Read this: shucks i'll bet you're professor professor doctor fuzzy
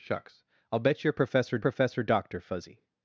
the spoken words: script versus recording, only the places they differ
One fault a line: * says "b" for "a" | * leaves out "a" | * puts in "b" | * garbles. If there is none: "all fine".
all fine